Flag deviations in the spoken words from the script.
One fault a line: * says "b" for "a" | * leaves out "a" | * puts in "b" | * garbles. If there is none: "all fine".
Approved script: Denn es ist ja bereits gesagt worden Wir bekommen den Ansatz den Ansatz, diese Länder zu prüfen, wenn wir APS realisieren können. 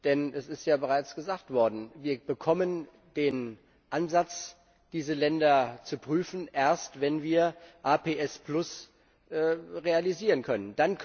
* leaves out "den Ansatz"
* puts in "erst"